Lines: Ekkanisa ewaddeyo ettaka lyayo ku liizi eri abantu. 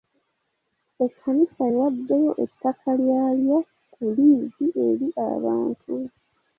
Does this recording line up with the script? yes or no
yes